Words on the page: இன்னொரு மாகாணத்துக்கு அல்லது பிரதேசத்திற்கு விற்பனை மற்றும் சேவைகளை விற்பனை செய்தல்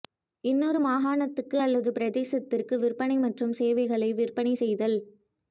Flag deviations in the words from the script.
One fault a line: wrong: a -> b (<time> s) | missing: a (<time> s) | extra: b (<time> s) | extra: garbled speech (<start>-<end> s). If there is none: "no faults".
no faults